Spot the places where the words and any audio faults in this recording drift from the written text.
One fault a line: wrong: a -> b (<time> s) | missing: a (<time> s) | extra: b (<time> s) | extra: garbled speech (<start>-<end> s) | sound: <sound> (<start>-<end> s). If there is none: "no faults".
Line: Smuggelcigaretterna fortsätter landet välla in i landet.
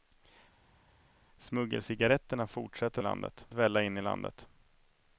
no faults